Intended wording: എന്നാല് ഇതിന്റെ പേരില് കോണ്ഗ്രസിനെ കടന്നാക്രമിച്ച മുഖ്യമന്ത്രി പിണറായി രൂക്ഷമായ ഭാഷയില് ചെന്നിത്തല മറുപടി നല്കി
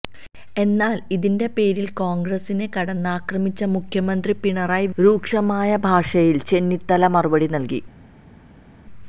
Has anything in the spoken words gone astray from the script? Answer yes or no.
no